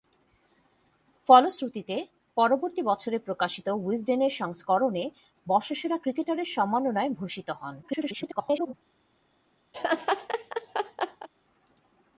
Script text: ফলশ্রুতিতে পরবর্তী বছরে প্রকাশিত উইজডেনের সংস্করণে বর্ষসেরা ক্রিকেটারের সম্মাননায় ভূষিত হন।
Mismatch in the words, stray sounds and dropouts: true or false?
true